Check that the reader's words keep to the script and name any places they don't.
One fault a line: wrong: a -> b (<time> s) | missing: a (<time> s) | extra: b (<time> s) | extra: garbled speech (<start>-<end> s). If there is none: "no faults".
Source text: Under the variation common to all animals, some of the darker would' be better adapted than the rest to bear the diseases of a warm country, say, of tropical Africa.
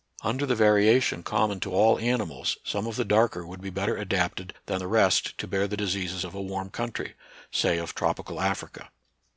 no faults